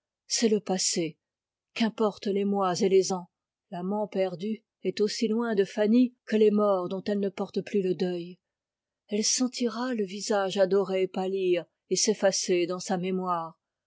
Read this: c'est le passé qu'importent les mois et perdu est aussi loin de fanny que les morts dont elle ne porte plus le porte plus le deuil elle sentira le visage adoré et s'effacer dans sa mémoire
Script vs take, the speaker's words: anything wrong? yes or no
yes